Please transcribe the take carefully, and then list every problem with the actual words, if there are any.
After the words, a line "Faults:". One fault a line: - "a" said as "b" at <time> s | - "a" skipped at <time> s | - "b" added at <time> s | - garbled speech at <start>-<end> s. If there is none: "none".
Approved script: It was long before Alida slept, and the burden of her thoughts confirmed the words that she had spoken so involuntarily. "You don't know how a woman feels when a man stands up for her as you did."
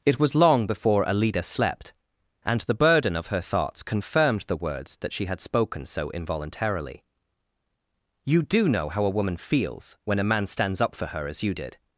It was long before Alida slept, and the burden of her thoughts confirmed the words that she had spoken so involuntarily. "You do know how a woman feels when a man stands up for her as you did."
Faults:
- "don't" said as "do" at 8.4 s